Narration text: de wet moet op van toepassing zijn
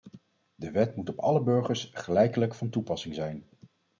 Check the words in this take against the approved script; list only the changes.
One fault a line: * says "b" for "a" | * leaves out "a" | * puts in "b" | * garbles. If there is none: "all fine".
* puts in "alle burgers gelijkelijk"